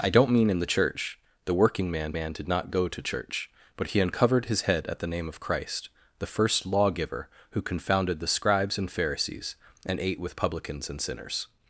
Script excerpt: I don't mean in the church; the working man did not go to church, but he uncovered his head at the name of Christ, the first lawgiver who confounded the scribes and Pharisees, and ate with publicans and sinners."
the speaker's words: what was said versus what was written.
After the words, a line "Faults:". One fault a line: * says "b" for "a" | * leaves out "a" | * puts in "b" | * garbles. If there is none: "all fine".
I don't mean in the church; the working man man did not go to church, but he uncovered his head at the name of Christ, the first lawgiver who confounded the scribes and Pharisees, and ate with publicans and sinners."
Faults:
* puts in "man"